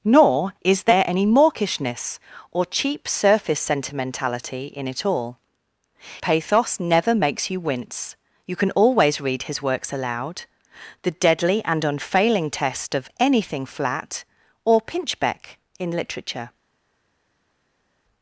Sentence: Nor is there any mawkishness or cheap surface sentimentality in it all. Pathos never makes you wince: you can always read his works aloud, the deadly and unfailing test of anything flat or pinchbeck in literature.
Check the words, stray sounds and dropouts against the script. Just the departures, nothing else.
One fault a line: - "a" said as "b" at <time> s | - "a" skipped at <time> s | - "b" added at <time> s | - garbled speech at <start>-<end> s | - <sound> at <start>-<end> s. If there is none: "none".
none